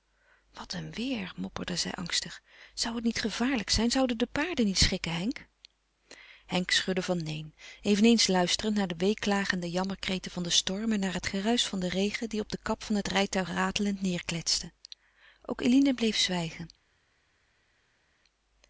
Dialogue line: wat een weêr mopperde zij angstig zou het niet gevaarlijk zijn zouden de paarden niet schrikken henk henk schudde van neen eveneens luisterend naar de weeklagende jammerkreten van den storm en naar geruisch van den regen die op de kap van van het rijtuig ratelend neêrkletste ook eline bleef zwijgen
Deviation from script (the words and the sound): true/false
true